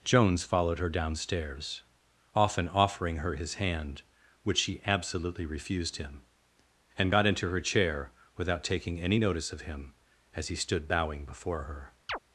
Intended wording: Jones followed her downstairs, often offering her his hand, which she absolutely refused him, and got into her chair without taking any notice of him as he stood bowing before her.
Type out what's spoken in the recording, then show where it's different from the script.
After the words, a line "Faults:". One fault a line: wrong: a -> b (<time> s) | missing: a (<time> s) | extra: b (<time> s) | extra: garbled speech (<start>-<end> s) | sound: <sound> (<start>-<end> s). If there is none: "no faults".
Jones followed her downstairs, often offering her his hand, which she absolutely refused him, and got into her chair without taking any notice of him as he stood bowing before her.
Faults:
sound: chirp (12.1-12.2 s)